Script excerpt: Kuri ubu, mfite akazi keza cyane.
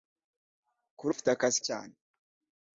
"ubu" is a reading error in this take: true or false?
true